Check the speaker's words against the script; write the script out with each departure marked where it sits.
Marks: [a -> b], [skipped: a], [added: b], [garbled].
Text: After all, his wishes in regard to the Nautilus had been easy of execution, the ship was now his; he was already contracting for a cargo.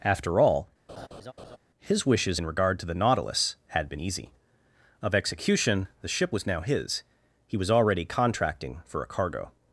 After all, his wishes in regard to the Nautilus had been easy of execution, the ship was now his; he was already contracting for a cargo.